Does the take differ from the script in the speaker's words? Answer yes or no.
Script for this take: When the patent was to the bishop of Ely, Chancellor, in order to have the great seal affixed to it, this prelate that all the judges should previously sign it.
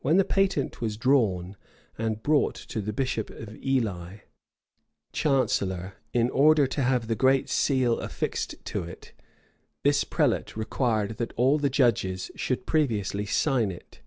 yes